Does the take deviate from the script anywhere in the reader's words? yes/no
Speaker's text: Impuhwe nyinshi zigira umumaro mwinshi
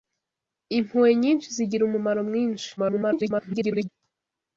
yes